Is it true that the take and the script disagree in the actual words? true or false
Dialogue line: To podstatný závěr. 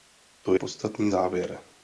false